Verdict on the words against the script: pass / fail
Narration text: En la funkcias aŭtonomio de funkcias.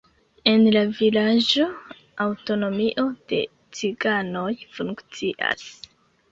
fail